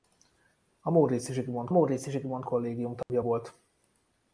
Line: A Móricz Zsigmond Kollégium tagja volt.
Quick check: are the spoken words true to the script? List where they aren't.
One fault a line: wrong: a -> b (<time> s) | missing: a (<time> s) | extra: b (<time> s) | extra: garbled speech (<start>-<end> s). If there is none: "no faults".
extra: Móricz Zsigmond (1.7 s)